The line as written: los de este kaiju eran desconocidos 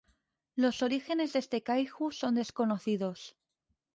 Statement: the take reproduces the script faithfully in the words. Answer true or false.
false